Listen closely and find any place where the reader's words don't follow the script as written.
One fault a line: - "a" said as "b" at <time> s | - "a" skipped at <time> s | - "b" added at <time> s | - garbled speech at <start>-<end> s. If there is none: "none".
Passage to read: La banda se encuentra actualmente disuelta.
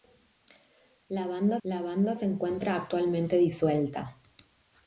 - "la banda" added at 1.6 s